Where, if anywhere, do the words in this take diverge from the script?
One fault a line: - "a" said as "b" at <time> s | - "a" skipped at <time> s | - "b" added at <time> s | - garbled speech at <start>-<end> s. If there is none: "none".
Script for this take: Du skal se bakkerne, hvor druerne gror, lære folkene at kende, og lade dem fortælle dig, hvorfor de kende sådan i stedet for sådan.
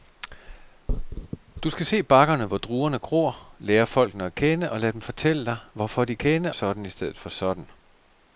none